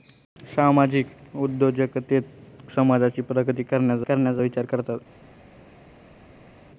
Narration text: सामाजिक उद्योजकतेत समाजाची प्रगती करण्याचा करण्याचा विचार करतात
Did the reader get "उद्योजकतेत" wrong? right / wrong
right